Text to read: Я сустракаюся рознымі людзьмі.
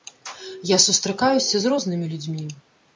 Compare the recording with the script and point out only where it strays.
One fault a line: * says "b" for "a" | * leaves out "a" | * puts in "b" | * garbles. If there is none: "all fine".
* puts in "з"